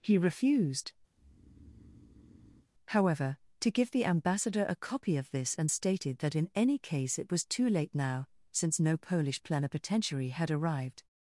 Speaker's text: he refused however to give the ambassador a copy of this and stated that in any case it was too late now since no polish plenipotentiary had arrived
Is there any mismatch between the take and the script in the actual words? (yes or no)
no